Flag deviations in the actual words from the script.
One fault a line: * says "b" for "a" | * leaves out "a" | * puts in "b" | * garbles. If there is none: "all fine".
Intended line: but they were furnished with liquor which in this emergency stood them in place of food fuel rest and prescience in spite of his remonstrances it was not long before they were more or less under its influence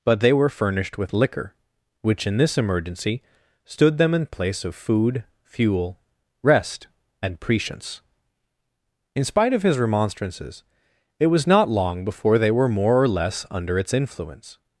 all fine